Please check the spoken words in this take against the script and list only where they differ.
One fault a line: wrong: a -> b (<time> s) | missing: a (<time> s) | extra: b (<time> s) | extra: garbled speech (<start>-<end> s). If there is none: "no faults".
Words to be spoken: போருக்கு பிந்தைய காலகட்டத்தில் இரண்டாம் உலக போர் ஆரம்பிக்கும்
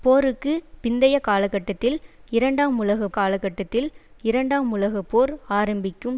extra: காலகட்டத்தில் இரண்டாம் உலக (3.1 s)